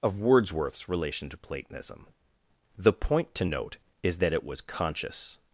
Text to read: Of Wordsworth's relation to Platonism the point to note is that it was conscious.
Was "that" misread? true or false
false